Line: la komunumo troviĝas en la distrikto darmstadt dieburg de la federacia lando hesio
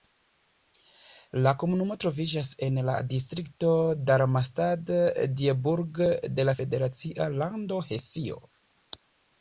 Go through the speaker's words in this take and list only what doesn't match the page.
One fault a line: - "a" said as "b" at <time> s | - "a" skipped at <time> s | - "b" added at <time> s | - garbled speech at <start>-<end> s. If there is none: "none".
none